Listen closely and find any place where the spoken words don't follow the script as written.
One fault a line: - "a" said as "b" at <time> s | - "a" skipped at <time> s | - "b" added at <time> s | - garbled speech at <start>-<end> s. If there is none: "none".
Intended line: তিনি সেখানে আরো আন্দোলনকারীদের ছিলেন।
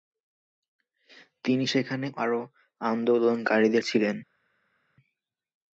none